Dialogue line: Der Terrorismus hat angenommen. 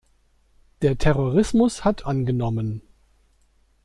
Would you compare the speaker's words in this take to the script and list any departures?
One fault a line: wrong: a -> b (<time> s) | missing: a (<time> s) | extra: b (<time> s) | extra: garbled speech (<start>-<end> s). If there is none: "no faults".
no faults